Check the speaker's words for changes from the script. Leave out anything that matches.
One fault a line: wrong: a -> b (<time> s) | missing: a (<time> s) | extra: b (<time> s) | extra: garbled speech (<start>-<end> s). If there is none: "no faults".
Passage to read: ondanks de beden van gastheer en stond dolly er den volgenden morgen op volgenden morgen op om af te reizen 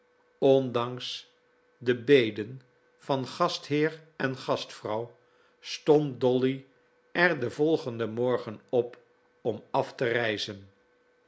extra: gastvrouw (4.4 s)
missing: volgenden morgen op (9.0 s)